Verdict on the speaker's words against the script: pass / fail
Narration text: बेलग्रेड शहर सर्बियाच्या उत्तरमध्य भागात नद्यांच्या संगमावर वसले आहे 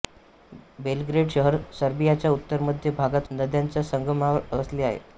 pass